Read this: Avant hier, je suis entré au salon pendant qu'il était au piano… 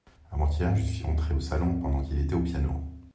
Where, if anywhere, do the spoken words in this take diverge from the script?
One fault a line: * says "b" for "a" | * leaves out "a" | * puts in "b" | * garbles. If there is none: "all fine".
all fine